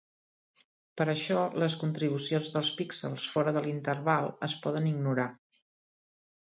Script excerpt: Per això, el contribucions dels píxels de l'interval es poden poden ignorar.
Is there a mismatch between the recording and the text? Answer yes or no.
yes